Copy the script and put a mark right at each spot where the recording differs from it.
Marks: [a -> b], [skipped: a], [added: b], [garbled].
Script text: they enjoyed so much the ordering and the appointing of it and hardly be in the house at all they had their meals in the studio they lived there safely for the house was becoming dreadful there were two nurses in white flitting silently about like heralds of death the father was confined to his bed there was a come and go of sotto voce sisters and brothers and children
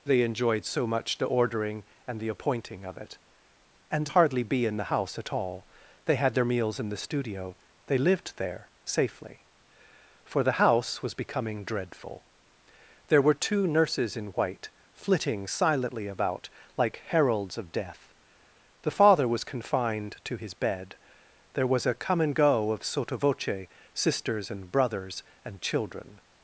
they enjoyed so much the ordering and the appointing of it and hardly be in the house at all they had their meals in the studio they lived there safely for the house was becoming dreadful there were two nurses in white flitting silently about like heralds of death the father was confined to his bed there was a come and go of sotto voce sisters and brothers and children